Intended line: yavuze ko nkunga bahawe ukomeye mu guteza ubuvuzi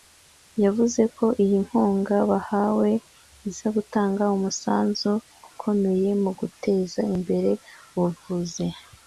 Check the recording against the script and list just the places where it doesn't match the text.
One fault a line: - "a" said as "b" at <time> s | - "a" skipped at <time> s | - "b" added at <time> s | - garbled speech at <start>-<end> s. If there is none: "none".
- "iyi" added at 1.4 s
- "iza gutanga umusanzu" added at 3.5 s
- "imbere" added at 7.2 s